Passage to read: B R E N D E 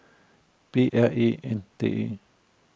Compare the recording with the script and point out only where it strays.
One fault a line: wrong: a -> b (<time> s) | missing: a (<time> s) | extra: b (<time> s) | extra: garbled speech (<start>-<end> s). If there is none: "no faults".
no faults